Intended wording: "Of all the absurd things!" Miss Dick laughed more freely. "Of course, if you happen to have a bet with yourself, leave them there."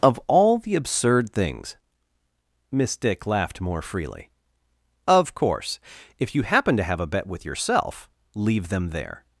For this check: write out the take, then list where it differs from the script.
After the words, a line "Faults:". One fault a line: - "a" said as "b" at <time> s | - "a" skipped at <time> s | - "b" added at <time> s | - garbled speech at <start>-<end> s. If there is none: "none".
"Of all the absurd things!" Miss Dick laughed more freely. "Of course, if you happen to have a bet with yourself, leave them there."
Faults:
none